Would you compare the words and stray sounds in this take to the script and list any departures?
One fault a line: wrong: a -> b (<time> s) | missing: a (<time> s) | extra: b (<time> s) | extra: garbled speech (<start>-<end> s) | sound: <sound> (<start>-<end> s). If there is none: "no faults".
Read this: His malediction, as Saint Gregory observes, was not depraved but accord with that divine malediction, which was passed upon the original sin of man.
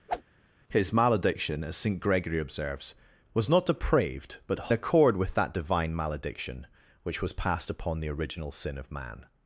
sound: whoosh (0.1-0.2 s)